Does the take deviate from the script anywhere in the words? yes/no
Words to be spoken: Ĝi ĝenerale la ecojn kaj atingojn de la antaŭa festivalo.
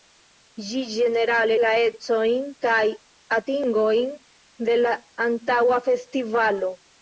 no